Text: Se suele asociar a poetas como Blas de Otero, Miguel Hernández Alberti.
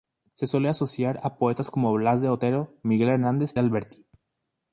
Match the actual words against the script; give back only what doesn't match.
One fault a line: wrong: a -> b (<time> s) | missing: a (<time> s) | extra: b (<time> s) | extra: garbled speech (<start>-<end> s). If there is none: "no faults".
no faults